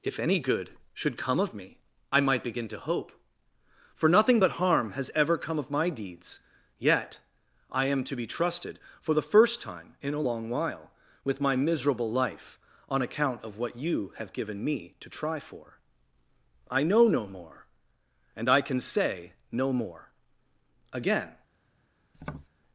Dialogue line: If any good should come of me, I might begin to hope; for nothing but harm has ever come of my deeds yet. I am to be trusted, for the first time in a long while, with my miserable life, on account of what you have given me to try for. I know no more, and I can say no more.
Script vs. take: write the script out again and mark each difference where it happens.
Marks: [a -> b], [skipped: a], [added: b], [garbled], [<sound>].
If any good should come of me, I might begin to hope; for nothing but harm has ever come of my deeds yet. I am to be trusted, for the first time in a long while, with my miserable life, on account of what you have given me to try for. I know no more, and I can say no more. [added: Again] [tap]